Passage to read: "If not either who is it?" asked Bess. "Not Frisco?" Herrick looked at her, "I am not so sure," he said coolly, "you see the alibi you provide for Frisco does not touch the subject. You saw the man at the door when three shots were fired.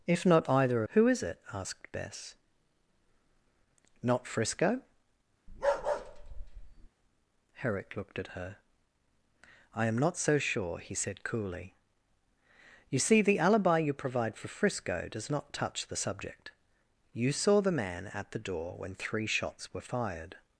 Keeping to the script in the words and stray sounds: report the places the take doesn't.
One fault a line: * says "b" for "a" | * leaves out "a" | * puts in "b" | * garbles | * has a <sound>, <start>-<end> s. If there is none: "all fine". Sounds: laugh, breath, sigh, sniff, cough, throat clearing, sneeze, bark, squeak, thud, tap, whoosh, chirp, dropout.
* has a bark, 5.5-6.9 s